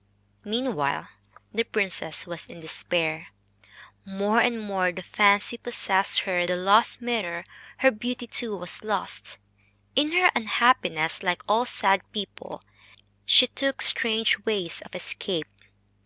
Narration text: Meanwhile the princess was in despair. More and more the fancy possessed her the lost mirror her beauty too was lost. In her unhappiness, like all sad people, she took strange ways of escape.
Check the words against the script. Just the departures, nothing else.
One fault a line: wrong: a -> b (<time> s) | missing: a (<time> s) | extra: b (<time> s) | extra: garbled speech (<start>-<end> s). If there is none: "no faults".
no faults